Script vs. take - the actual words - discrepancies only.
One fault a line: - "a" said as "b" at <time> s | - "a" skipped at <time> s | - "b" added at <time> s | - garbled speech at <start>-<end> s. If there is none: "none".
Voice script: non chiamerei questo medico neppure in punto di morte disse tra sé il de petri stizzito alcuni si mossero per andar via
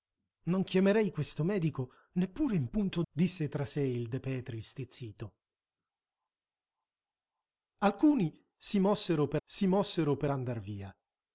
- "di morte" skipped at 3.0 s
- "si mossero per" added at 9.4 s